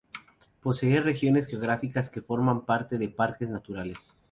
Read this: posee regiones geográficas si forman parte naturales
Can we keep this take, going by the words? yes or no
no